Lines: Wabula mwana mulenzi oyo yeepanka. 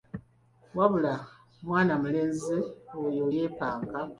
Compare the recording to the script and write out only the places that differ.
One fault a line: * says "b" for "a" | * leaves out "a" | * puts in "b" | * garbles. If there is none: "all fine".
all fine